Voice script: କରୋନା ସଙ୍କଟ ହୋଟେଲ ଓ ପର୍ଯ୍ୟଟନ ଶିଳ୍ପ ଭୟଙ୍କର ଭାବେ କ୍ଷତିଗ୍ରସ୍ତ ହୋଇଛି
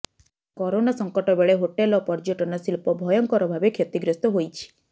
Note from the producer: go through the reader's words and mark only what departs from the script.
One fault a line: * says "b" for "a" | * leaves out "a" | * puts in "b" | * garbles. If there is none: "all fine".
* puts in "ବେଳେ"